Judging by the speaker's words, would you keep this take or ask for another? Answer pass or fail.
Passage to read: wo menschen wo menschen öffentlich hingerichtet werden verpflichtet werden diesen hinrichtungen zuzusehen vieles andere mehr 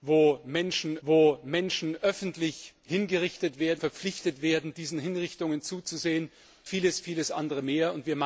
pass